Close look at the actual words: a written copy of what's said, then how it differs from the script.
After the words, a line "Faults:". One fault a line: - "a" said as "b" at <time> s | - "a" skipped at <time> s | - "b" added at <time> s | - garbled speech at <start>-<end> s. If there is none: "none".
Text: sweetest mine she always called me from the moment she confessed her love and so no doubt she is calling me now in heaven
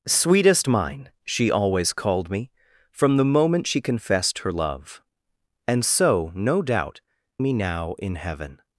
sweetest mine she always called me from the moment she confessed her love and so no doubt me now in heaven
Faults:
- "she is calling" skipped at 7.0 s